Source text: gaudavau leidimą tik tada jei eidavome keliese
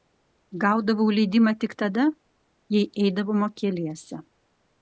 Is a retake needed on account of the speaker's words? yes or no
no